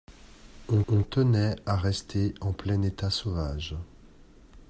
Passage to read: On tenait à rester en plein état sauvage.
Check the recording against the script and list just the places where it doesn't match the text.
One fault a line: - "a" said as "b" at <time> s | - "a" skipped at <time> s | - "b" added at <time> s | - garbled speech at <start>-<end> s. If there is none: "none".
- "on" added at 0.9 s